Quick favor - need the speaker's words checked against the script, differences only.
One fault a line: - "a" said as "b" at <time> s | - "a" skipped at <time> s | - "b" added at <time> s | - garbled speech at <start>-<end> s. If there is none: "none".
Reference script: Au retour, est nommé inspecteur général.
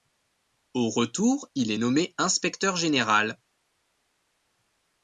- "il" added at 1.6 s